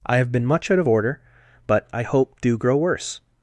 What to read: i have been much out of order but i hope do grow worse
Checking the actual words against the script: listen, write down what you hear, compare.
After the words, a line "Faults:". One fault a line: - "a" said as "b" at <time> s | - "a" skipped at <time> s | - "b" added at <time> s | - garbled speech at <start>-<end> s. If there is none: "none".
i have been much out of order but i hope do grow worse
Faults:
none